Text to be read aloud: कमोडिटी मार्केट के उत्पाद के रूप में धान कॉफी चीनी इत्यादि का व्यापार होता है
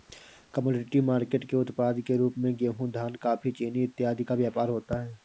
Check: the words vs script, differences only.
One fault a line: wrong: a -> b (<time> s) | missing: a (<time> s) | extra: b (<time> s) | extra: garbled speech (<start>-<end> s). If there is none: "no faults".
extra: गेहूं (2.5 s)